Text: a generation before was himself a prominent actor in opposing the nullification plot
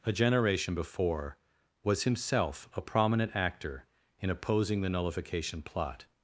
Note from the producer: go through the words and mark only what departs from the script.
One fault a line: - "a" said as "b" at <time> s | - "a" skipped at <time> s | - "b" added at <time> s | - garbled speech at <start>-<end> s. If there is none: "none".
none